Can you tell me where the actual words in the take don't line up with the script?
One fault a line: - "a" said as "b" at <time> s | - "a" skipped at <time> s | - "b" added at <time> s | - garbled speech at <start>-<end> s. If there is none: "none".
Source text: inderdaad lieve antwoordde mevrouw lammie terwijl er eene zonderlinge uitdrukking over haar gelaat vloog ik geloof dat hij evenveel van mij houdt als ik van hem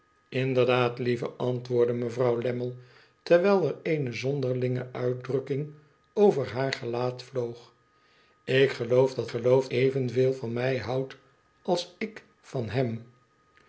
- "hij" said as "geloof" at 9.3 s